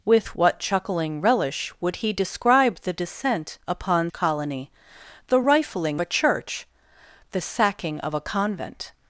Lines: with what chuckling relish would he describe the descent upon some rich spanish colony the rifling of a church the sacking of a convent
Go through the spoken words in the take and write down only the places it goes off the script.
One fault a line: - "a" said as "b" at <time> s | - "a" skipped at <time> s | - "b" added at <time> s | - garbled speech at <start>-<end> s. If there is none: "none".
- "some rich spanish" skipped at 4.1 s
- "of" skipped at 6.0 s